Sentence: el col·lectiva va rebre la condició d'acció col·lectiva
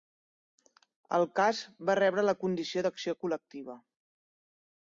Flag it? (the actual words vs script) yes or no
yes